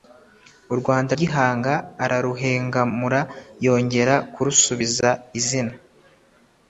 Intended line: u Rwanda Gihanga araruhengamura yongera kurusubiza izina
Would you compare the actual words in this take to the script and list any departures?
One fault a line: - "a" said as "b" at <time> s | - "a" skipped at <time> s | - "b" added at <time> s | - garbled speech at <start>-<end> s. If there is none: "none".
none